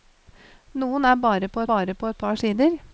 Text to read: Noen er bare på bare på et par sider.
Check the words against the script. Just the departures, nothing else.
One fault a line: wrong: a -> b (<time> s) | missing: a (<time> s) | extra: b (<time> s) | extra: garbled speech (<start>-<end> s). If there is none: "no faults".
no faults